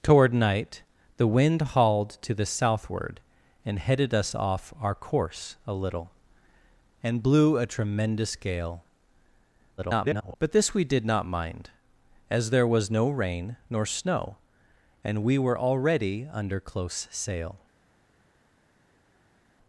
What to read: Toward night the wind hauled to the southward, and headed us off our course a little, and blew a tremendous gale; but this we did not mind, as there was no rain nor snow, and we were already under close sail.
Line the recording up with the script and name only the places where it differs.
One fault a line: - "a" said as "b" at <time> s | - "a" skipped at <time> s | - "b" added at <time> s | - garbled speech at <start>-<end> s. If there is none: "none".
- garbled speech at 9.8-10.4 s